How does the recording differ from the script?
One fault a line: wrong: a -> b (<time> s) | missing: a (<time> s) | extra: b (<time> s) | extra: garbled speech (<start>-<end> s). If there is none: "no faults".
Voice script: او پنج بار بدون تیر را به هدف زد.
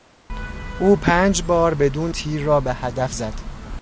no faults